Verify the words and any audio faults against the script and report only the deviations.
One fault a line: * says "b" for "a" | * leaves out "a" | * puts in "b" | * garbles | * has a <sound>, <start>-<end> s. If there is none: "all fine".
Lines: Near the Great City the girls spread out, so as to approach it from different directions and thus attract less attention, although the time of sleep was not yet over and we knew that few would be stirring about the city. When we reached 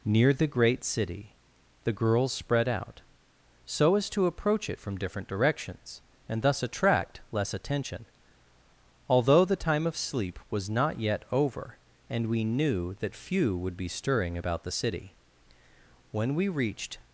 all fine